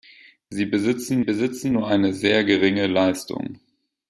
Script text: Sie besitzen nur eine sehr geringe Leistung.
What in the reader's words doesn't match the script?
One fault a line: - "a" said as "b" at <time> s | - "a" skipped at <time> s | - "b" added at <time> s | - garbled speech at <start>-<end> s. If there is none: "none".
- "besitzen" added at 1.2 s